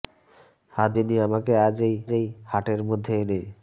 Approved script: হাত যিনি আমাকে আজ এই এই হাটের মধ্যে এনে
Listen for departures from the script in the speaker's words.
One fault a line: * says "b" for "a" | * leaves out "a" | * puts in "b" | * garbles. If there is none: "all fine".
all fine